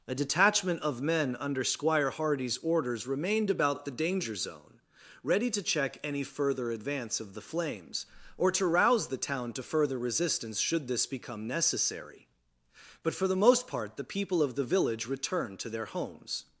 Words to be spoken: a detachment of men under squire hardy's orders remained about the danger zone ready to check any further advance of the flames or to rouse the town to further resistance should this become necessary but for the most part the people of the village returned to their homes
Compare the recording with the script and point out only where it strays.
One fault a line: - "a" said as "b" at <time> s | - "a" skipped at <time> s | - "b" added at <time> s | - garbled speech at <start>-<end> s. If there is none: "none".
none